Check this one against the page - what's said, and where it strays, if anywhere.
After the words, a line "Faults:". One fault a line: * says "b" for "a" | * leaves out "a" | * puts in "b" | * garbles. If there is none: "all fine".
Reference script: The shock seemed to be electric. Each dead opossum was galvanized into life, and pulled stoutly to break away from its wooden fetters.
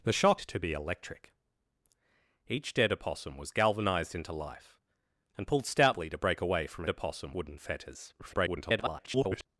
The shock to be electric. Each dead opossum was galvanized into life, and pulled stoutly to break away from opossum wooden fetters. [garbled]
Faults:
* leaves out "seemed"
* says "opossum" for "its"
* garbles